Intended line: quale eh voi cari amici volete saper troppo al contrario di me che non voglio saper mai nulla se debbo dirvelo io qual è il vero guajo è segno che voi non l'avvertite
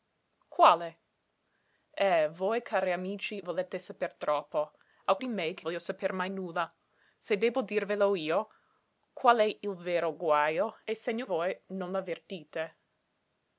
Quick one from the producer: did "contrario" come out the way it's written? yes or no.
no